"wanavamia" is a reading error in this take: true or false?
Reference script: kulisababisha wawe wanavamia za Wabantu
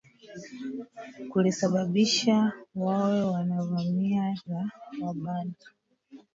false